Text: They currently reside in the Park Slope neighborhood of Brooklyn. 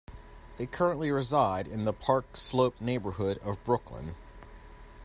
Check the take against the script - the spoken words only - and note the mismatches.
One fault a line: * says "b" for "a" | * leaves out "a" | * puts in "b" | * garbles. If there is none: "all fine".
all fine